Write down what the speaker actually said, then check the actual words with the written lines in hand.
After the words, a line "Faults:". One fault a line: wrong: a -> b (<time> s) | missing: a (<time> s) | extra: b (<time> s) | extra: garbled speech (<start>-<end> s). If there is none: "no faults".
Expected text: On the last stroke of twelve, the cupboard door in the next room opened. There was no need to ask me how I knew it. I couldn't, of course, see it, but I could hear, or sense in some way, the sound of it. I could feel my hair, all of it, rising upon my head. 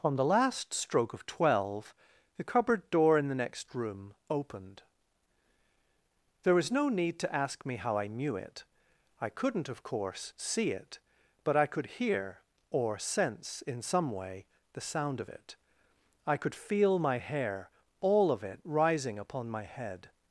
On the last stroke of twelve, the cupboard door in the next room opened. There was no need to ask me how I knew it. I couldn't, of course, see it, but I could hear, or sense in some way, the sound of it. I could feel my hair, all of it, rising upon my head.
Faults:
no faults